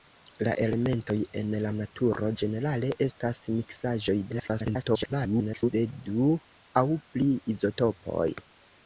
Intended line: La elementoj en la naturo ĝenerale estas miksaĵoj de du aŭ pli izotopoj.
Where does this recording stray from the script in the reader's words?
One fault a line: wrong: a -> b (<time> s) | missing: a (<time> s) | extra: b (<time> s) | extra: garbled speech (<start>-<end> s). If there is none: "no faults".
extra: garbled speech (4.3-5.7 s)